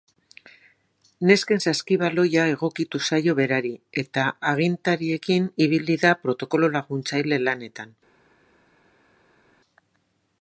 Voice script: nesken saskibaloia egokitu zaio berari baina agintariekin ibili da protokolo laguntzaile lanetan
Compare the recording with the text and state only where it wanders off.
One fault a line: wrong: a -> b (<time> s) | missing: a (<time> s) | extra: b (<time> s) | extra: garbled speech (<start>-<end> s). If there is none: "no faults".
wrong: baina -> eta (4.0 s)